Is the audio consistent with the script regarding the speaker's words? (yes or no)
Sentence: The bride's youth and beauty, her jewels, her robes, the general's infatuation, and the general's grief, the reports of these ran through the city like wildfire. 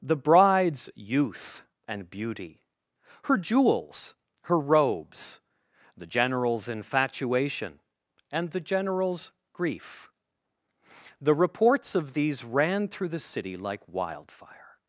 yes